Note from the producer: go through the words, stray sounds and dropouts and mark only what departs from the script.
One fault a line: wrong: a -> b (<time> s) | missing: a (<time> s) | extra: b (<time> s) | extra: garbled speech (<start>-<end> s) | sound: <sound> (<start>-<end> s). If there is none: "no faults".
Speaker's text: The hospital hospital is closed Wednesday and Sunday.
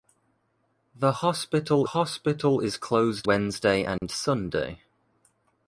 sound: dropout (4.0-4.0 s)